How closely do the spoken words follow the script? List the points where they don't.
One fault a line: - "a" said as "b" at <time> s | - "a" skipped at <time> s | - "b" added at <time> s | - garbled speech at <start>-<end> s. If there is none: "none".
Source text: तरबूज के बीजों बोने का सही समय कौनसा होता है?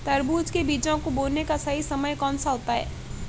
- "को" added at 1.0 s